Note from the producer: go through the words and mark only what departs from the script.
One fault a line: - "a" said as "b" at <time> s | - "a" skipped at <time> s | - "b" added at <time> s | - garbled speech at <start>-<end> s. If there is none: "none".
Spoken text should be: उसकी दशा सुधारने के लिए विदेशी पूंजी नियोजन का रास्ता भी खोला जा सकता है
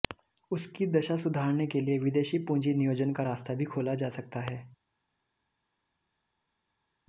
none